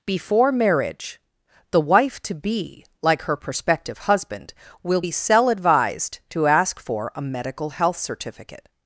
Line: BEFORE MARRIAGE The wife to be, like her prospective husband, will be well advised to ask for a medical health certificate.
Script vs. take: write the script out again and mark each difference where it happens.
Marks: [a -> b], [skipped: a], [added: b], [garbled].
BEFORE MARRIAGE The wife to be, like her prospective husband, will be [well -> cell] advised to ask for a medical health certificate.